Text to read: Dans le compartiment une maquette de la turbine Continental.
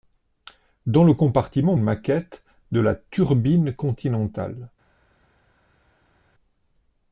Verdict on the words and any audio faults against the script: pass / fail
pass